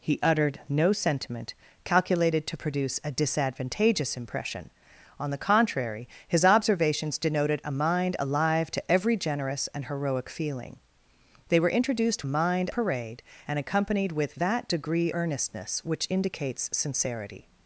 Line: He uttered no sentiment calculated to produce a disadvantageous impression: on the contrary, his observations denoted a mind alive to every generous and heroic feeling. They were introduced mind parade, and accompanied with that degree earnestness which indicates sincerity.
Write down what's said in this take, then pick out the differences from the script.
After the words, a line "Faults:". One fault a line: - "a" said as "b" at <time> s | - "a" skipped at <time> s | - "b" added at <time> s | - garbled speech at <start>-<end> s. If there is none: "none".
He uttered no sentiment calculated to produce a disadvantageous impression: on the contrary, his observations denoted a mind alive to every generous and heroic feeling. They were introduced mind parade, and accompanied with that degree earnestness which indicates sincerity.
Faults:
none